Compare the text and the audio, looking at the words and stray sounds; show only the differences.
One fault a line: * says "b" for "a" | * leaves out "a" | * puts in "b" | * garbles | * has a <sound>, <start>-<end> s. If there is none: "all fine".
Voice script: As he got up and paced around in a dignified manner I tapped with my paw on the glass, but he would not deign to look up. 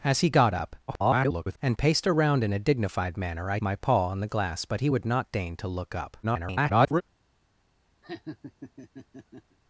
* garbles
* leaves out "tapped with"
* garbles
* has a laugh, 8.0-9.6 s